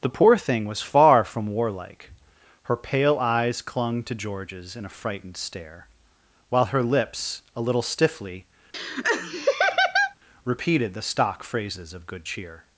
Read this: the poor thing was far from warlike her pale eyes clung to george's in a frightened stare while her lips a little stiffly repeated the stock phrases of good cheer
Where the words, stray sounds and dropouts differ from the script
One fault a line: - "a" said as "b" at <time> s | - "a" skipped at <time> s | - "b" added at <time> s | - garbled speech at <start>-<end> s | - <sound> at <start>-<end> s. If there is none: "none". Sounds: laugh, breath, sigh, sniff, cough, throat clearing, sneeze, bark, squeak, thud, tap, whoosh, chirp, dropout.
- laugh at 8.7-10.1 s